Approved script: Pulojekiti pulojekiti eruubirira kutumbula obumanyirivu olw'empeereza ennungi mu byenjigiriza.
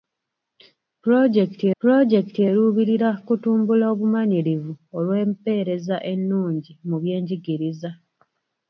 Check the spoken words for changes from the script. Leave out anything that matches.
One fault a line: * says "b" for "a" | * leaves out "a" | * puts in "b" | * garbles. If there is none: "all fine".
all fine